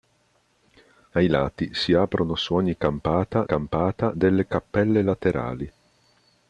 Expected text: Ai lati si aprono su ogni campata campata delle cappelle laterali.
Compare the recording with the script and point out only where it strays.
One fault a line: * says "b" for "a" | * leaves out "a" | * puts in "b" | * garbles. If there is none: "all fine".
all fine